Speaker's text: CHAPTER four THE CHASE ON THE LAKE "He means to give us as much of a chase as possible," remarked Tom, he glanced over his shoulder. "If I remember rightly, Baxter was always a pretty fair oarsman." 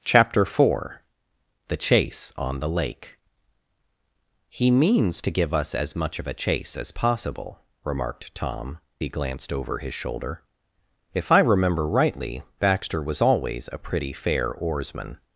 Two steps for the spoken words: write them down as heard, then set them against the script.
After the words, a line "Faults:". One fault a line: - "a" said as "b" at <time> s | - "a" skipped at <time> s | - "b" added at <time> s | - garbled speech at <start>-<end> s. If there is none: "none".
CHAPTER four THE CHASE ON THE LAKE "He means to give us as much of a chase as possible," remarked Tom, he glanced over his shoulder. "If I remember rightly, Baxter was always a pretty fair oarsman."
Faults:
none